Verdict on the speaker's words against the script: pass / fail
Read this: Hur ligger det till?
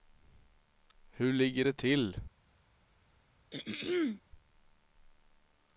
pass